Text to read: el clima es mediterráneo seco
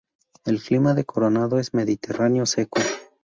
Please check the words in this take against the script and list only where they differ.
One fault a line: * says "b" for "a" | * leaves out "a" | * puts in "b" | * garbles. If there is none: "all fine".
* puts in "de coronado"